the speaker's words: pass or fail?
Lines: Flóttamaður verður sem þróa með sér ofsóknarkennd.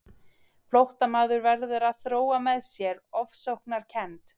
fail